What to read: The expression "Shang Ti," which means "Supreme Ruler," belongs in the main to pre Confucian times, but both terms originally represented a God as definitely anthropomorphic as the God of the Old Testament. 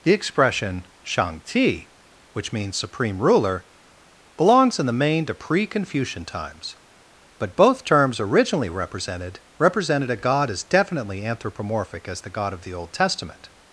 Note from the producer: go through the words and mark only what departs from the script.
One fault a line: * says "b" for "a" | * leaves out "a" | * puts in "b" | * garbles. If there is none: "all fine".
* puts in "represented"